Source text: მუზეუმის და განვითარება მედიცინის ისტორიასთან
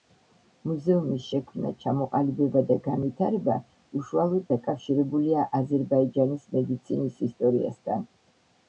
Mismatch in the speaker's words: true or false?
true